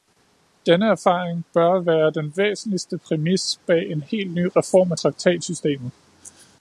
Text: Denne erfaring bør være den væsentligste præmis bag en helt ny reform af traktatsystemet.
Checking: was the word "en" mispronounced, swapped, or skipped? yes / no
no